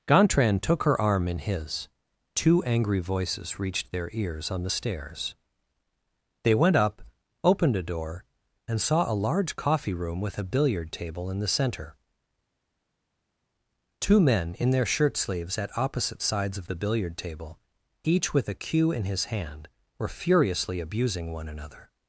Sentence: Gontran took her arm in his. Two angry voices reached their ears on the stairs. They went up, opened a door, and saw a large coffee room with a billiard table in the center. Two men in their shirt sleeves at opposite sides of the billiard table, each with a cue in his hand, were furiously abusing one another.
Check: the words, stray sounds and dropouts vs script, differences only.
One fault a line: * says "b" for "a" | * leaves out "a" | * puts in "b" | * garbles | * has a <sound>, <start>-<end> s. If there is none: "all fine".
all fine